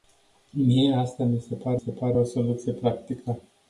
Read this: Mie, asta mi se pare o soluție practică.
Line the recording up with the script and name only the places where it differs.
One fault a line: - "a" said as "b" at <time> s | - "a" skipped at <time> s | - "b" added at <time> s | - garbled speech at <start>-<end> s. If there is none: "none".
- "se pare" added at 1.7 s